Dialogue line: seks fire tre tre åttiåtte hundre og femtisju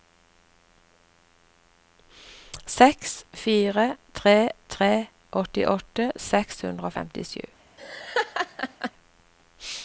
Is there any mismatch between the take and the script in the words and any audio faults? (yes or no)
yes